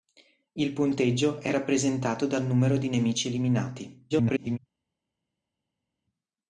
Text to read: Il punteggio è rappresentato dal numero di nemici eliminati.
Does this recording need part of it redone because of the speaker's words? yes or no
yes